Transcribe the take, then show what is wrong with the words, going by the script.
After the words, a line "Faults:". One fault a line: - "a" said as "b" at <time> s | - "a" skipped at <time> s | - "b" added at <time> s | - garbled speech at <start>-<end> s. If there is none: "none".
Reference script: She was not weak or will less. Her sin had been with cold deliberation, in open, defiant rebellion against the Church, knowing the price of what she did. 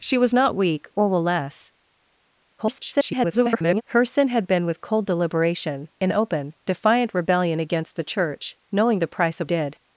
She was not weak or will less. [garbled] Her sin had been with cold deliberation, in open, defiant rebellion against the Church, knowing the price of did.
Faults:
- garbled speech at 2.6-3.8 s
- "what she" skipped at 9.5 s